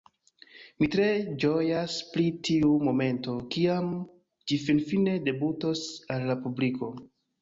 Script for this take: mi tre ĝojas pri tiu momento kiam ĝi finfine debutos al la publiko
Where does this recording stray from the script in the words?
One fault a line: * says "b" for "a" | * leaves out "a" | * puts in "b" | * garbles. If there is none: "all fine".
all fine